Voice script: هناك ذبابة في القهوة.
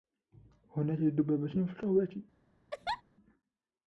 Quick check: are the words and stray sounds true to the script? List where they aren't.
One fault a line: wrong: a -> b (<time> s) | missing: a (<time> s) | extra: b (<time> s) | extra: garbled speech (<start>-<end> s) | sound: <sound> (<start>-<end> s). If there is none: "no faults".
sound: laugh (2.7-3.0 s)